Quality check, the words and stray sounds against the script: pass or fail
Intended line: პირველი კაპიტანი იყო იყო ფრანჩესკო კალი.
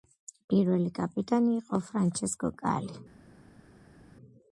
fail